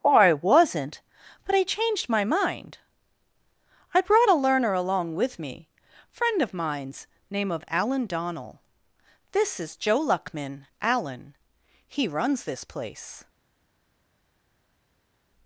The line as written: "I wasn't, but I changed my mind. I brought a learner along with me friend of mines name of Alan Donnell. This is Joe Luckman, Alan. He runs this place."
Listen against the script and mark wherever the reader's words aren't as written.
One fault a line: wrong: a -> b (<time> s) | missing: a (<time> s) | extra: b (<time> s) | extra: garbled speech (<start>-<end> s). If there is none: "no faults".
no faults